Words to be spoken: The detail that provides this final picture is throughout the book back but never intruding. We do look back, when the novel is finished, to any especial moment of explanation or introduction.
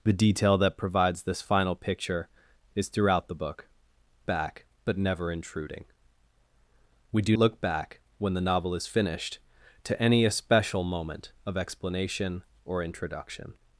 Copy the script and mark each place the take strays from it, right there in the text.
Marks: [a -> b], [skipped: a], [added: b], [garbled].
The detail that provides this final picture is throughout the book back but never intruding. We do look back, when the novel is finished, to any especial moment of explanation or introduction.